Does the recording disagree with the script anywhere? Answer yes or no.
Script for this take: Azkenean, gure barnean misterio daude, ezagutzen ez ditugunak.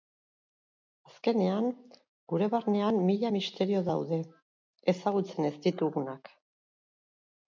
yes